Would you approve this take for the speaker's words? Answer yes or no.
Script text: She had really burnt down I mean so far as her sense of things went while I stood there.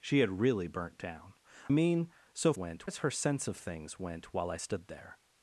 no